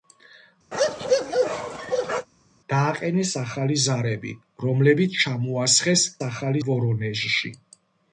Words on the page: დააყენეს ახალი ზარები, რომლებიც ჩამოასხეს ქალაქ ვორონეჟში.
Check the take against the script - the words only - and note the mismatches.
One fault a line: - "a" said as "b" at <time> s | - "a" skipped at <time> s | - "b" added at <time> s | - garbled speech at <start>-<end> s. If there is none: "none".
- "ქალაქ" said as "ახალი" at 6.3 s